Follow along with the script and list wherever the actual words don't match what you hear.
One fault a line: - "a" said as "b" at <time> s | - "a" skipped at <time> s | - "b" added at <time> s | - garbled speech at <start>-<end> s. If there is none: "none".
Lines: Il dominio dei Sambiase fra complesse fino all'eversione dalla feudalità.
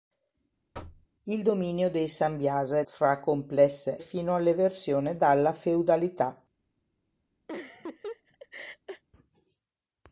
none